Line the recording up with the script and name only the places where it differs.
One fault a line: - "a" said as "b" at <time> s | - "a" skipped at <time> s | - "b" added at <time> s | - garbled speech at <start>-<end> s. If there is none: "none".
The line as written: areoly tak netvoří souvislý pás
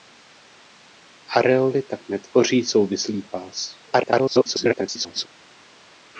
- garbled speech at 3.9-5.3 s